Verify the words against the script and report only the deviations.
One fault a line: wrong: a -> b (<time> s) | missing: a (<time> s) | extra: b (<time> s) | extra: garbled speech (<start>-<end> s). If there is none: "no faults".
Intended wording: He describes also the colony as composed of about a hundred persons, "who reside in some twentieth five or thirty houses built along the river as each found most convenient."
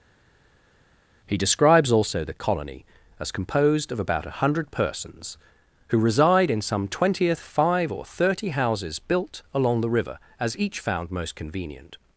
no faults